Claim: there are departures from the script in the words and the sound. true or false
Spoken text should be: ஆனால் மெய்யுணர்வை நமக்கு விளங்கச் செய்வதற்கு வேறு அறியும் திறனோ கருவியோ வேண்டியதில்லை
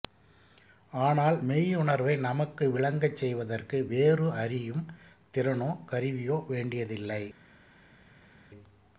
false